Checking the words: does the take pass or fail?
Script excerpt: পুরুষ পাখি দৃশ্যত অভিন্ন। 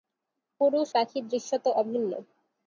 pass